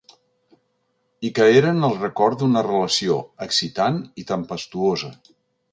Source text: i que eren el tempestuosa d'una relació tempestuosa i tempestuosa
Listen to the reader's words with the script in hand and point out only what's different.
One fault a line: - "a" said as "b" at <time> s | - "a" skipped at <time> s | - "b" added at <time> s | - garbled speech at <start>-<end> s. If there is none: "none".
- "tempestuosa" said as "record" at 2.0 s
- "tempestuosa" said as "excitant" at 3.5 s